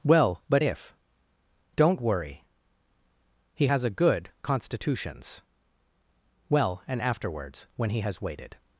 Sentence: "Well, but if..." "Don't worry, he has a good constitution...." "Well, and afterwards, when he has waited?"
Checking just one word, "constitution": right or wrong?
wrong